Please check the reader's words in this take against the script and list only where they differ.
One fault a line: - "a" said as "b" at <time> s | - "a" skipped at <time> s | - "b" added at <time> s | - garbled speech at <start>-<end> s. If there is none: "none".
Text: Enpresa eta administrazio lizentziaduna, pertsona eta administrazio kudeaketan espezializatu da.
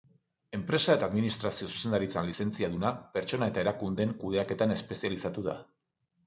- "zuzendaritzan" added at 1.7 s
- "administrazio" said as "erakundeen" at 3.7 s